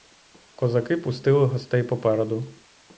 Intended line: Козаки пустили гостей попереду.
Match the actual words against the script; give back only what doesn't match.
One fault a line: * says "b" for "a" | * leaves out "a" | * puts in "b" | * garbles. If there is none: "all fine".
all fine